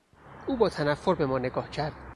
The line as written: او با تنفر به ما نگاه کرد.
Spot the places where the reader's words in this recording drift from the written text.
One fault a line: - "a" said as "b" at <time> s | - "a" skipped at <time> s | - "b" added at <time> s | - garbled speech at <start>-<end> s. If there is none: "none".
none